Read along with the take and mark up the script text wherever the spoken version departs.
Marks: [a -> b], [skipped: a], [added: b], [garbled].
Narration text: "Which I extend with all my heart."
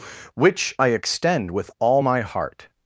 "Which I extend with all my heart."